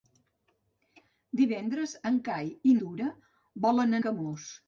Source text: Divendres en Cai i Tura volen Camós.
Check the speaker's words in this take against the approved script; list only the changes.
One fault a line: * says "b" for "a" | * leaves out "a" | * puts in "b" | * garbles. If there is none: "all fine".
all fine